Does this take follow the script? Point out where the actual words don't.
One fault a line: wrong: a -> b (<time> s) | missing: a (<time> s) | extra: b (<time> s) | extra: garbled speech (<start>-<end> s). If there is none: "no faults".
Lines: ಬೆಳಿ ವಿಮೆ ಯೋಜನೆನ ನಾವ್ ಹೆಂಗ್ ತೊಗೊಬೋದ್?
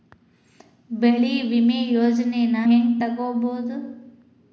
missing: ನಾವ್ (2.5 s)